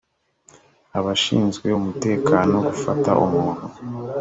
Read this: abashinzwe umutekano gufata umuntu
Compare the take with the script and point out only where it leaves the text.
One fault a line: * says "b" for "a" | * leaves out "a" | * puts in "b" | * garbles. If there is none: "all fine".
all fine